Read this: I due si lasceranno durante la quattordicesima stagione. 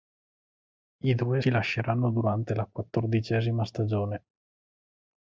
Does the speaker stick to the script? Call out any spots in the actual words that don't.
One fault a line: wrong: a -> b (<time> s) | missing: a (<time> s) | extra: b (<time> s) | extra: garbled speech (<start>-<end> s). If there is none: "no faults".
no faults